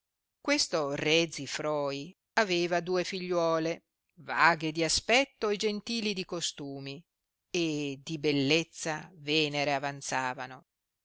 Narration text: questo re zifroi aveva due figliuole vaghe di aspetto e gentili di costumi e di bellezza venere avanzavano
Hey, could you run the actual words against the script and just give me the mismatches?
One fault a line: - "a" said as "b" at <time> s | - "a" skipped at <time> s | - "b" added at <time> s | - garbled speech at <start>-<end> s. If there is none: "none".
none